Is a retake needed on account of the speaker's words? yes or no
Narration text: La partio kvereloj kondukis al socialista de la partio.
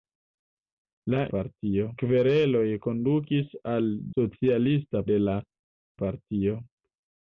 no